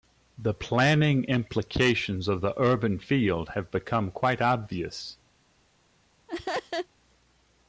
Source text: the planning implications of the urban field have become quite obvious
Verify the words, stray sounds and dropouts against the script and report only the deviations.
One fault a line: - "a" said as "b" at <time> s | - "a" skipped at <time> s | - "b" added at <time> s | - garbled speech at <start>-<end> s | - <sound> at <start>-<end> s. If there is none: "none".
- laugh at 6.3-6.9 s